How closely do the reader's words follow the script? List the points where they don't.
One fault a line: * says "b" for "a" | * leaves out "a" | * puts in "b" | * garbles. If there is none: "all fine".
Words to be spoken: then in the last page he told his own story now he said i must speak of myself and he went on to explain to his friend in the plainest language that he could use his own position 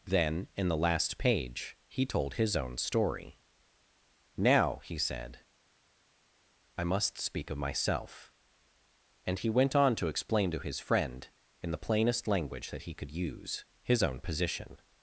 all fine